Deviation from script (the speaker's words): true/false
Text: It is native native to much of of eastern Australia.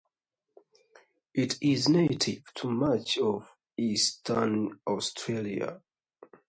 true